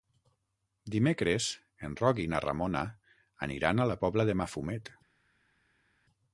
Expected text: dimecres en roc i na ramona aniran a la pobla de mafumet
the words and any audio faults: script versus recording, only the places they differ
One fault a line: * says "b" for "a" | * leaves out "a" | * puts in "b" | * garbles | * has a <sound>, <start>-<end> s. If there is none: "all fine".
all fine